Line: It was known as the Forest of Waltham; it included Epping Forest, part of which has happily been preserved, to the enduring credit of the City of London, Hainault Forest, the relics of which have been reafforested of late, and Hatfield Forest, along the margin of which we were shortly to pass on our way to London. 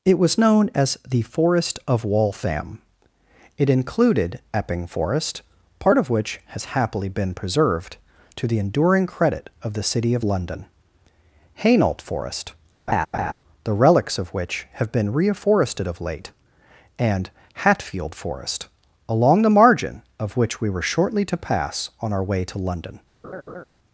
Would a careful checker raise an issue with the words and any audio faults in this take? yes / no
yes